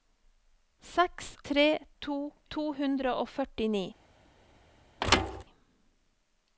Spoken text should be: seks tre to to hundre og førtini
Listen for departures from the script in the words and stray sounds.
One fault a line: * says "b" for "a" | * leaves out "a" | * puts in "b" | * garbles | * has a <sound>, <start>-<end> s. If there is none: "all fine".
* has a thud, 5.0-5.4 s